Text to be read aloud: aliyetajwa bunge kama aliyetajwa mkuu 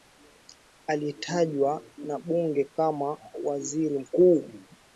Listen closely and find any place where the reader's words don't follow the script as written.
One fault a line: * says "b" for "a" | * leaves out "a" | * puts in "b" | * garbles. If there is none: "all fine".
* puts in "na"
* says "waziri" for "aliyetajwa"